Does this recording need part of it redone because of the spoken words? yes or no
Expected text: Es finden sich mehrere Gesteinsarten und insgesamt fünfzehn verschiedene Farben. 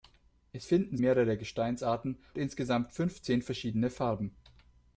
yes